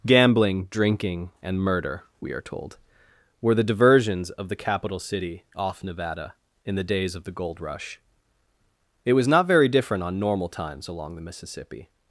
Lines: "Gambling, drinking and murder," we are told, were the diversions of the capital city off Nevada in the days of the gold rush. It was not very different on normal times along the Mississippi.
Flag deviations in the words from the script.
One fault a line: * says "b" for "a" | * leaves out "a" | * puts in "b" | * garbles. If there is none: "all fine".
all fine